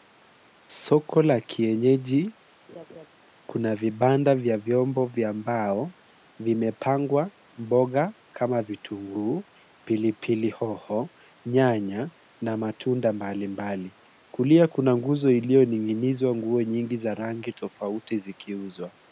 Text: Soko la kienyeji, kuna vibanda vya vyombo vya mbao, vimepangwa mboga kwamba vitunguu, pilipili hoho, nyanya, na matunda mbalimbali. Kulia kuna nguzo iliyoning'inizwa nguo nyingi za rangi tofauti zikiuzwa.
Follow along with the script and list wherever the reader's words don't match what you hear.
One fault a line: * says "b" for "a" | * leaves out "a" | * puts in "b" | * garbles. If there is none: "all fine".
* says "kama" for "kwamba"